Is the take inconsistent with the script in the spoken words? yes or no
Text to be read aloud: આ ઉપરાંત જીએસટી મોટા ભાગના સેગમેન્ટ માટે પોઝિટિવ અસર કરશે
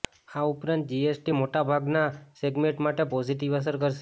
no